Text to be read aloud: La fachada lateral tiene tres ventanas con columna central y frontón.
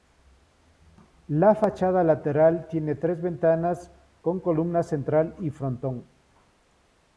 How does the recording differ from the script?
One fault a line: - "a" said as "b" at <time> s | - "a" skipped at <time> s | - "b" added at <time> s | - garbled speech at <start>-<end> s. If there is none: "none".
none